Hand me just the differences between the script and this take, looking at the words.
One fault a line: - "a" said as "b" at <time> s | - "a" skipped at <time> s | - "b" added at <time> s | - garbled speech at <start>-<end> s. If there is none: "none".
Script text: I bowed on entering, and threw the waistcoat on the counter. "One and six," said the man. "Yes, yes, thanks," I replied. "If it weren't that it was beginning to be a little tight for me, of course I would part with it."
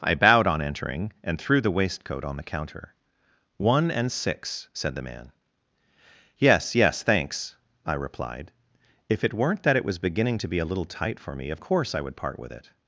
none